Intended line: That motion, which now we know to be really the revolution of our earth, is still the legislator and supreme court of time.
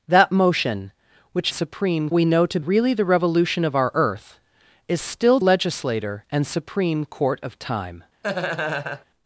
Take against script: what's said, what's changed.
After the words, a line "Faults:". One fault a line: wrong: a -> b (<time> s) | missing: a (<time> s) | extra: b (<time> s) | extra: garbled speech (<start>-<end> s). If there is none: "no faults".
That motion, which supreme we know to really the revolution of our earth, is still legislator and supreme court of time.
Faults:
wrong: now -> supreme (1.5 s)
missing: be (2.6 s)
missing: the (5.4 s)